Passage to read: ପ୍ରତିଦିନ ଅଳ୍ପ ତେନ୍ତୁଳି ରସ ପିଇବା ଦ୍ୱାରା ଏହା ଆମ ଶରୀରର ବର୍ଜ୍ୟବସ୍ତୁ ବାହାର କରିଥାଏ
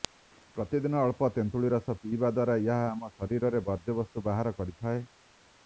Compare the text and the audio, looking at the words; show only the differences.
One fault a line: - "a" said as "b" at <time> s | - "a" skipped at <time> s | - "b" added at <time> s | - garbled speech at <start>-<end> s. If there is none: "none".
none